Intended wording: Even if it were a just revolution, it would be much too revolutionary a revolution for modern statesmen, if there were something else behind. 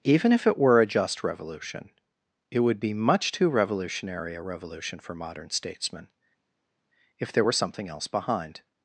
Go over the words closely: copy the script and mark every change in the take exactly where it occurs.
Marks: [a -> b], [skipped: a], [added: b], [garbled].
Even if it were a just revolution, it would be much too revolutionary a revolution for modern statesmen, if there were something else behind.